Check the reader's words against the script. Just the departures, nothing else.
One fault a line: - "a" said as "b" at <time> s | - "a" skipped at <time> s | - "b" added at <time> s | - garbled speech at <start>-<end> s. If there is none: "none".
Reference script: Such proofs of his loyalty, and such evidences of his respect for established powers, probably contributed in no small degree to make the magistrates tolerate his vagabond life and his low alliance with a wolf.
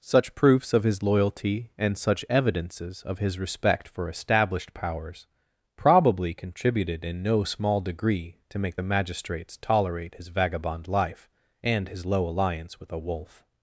none